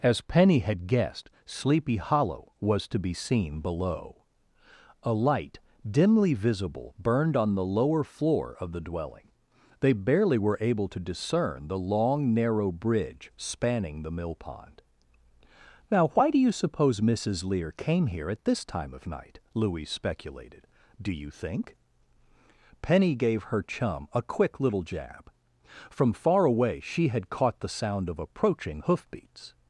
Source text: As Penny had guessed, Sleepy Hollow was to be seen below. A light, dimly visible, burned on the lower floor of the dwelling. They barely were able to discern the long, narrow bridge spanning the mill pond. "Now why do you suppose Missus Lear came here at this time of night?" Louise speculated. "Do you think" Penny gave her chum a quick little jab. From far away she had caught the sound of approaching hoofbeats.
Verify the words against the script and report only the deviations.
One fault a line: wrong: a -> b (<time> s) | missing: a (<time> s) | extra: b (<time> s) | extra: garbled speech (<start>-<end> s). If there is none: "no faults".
no faults